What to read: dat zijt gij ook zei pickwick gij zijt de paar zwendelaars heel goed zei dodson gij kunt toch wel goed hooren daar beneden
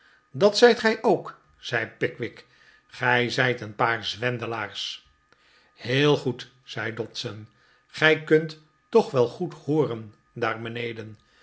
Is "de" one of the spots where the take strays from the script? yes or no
yes